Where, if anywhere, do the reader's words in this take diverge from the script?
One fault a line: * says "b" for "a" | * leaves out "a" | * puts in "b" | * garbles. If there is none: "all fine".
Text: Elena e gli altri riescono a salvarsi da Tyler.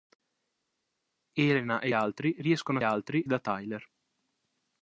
* leaves out "gli"
* says "altri" for "salvarsi"